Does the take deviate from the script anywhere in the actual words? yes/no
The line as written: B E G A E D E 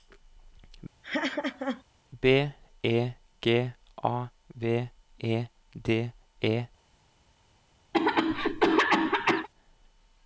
yes